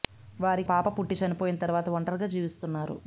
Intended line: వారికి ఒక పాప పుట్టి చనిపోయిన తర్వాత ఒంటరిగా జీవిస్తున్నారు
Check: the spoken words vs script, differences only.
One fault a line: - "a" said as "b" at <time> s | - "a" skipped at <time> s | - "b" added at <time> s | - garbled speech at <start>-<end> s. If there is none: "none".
- "ఒక" skipped at 0.7 s